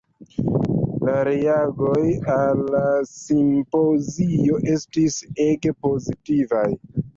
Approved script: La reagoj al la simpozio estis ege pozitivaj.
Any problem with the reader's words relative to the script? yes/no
no